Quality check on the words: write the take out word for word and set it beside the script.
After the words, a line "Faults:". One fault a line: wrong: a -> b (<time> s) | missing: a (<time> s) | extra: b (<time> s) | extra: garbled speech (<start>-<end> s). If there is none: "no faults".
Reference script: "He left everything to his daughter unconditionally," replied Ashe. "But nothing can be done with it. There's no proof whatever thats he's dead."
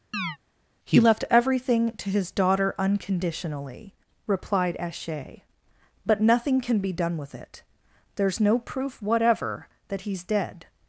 "He left everything to his daughter unconditionally," replied Ashe. "But nothing can be done with it. There's no proof whatever that he's dead."
Faults:
wrong: thats -> that (9.9 s)